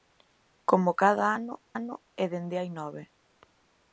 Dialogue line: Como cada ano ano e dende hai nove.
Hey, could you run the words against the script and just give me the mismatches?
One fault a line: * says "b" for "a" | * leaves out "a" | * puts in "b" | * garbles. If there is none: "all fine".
all fine